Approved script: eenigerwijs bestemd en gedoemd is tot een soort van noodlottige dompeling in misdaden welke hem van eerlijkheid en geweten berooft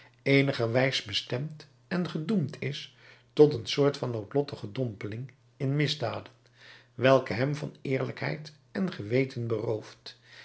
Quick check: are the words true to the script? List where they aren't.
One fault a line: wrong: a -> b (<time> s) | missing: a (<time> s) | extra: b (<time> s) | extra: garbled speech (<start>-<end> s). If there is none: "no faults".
no faults